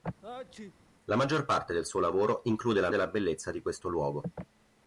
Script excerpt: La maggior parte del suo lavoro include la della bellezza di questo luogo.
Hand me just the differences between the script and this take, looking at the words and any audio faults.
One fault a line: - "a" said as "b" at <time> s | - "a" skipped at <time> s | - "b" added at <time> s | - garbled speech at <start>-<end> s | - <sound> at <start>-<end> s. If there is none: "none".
- sneeze at 0.2-0.8 s